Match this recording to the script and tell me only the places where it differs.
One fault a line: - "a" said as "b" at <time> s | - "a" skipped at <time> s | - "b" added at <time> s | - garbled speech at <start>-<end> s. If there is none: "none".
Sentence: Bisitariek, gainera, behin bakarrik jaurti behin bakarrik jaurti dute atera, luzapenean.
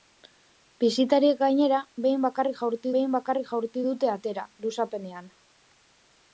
none